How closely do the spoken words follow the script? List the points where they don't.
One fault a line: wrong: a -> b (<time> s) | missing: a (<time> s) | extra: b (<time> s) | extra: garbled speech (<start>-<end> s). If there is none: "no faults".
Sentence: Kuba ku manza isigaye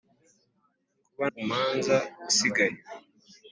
no faults